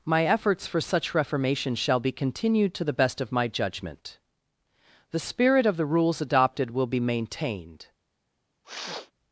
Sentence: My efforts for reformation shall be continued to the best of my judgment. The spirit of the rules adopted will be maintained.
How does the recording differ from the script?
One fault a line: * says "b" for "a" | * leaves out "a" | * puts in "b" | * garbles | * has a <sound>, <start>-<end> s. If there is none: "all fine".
* puts in "such"
* has a sniff, 8.6-9.1 s